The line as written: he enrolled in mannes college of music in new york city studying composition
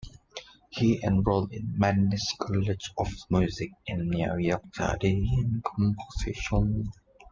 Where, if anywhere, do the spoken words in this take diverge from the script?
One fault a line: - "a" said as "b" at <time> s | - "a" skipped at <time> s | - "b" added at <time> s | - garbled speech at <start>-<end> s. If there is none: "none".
- "city" skipped at 4.7 s